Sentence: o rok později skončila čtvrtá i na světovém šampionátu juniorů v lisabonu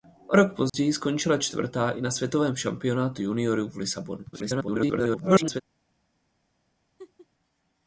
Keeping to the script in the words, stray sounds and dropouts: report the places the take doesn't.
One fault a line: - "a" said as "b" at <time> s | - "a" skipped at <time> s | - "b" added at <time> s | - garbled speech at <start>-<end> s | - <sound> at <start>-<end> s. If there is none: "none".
- dropout at 0.7-0.7 s
- garbled speech at 4.3-5.6 s
- laugh at 7.0-7.3 s